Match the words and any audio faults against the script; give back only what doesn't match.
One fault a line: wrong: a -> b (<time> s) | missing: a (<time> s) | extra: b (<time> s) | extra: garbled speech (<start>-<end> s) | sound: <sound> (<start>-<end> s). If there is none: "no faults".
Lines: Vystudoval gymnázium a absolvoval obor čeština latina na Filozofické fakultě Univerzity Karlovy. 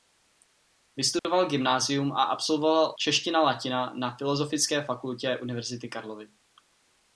sound: dropout (1.2-1.2 s)
missing: obor (2.9 s)